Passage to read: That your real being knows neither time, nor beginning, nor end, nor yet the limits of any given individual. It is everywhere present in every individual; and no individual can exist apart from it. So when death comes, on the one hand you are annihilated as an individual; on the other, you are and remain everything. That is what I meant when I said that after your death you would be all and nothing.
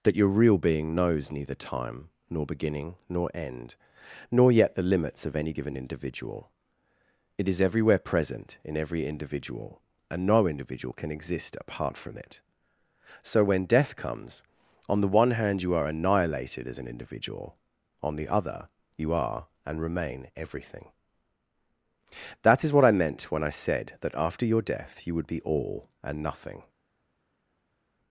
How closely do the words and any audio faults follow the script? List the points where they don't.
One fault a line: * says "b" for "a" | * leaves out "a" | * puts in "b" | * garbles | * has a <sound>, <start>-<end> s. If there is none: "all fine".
all fine